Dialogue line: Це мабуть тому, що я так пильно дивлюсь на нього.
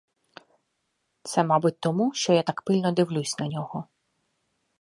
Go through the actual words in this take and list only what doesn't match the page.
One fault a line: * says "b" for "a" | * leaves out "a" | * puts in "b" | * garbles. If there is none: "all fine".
all fine